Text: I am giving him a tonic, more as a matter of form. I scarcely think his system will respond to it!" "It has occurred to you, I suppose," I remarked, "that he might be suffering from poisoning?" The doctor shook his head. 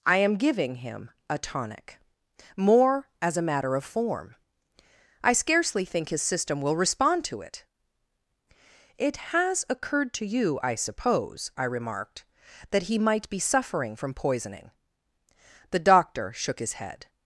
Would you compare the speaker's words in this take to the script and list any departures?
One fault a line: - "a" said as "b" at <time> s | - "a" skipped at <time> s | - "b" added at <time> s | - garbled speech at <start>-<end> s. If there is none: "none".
none